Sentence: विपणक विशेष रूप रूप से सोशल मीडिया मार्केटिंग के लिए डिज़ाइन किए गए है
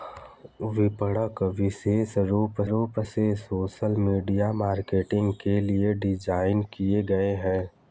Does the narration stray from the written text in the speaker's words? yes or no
no